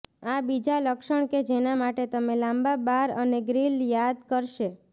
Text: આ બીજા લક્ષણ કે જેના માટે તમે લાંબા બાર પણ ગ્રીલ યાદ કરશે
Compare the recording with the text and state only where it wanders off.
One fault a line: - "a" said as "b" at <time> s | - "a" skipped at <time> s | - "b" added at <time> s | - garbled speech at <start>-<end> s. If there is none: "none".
- "પણ" said as "અને" at 3.2 s